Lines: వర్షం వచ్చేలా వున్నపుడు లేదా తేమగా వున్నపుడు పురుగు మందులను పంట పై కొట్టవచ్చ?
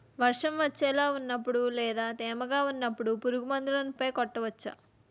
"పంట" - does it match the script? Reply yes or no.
no